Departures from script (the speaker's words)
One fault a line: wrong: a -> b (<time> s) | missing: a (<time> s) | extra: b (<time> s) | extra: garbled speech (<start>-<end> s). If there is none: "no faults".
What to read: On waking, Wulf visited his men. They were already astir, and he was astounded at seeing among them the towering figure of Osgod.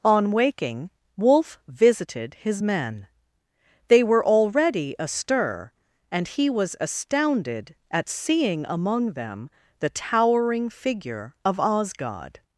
no faults